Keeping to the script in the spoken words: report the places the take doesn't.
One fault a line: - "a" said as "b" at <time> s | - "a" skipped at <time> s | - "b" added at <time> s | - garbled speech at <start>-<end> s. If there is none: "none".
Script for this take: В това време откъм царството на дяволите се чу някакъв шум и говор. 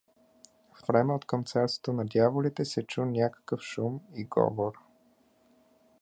- "това" skipped at 0.8 s